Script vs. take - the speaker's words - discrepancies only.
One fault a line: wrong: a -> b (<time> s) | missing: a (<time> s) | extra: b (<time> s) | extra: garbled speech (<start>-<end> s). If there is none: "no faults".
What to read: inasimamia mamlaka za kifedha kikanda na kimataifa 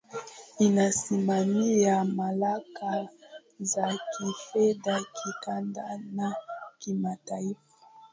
no faults